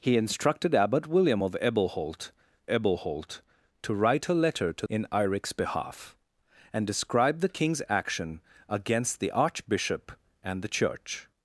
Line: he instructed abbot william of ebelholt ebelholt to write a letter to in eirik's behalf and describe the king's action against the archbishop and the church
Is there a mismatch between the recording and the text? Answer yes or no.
no